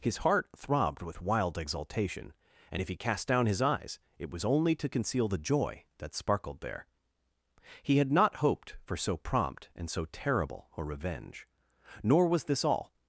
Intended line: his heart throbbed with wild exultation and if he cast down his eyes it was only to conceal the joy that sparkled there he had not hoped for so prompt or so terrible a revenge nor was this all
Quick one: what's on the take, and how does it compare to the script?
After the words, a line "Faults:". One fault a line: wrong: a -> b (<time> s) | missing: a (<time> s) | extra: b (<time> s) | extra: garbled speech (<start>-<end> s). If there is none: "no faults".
his heart throbbed with wild exultation and if he cast down his eyes it was only to conceal the joy that sparkled there he had not hoped for so prompt and so terrible a revenge nor was this all
Faults:
wrong: or -> and (9.8 s)